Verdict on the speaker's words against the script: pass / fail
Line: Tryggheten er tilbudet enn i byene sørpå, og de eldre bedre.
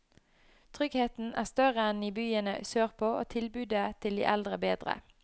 fail